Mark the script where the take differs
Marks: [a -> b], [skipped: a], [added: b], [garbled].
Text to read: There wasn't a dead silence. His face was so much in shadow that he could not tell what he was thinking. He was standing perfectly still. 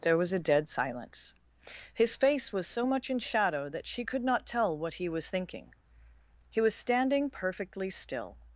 There [wasn't -> was] a dead silence. His face was so much in shadow that [he -> she] could not tell what he was thinking. He was standing perfectly still.